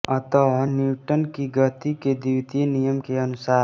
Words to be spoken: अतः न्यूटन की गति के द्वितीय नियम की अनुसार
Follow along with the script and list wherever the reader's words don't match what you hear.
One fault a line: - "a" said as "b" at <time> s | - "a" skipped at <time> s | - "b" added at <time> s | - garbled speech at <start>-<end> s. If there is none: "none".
- "की" said as "के" at 3.0 s